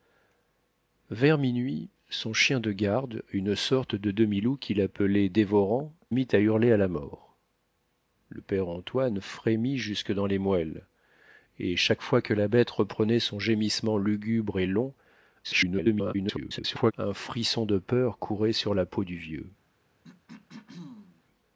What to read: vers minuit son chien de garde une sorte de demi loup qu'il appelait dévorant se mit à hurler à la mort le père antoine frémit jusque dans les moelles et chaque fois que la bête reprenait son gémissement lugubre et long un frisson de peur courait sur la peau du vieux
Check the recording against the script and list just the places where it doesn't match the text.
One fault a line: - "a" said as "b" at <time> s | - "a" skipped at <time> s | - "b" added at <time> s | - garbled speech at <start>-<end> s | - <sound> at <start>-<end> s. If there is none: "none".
- "se" skipped at 5.9 s
- garbled speech at 15.4-16.9 s
- throat clearing at 20.0-21.2 s